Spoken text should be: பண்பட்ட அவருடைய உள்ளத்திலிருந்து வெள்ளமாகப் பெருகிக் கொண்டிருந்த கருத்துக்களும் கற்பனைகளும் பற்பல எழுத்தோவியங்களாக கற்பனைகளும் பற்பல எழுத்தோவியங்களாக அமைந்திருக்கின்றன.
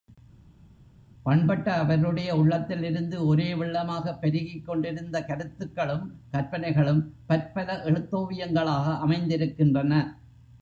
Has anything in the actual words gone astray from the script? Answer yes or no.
yes